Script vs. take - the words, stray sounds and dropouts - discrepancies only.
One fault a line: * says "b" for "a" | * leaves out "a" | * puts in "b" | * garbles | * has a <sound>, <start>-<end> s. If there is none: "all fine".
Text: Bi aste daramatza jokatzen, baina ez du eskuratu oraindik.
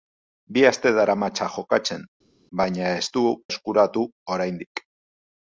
all fine